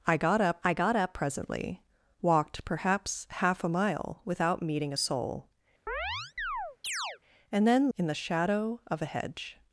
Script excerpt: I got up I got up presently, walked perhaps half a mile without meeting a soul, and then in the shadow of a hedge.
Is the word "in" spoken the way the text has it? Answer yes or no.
yes